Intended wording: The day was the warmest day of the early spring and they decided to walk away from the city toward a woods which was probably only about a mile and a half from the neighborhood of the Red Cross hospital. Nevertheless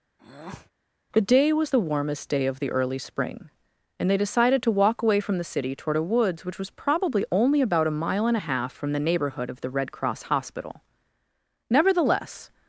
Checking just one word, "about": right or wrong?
right